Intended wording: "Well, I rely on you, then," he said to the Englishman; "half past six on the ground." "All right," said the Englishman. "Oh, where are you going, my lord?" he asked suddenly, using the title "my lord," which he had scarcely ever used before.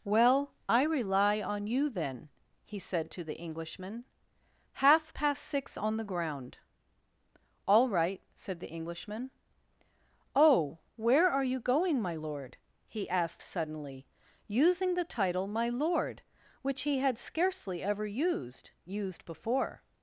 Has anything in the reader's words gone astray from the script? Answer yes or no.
yes